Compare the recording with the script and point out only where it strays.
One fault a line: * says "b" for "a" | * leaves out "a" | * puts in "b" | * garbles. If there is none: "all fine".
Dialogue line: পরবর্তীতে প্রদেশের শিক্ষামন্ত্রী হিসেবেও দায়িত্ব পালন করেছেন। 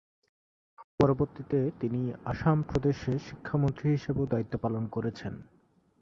* puts in "তিনি আসাম"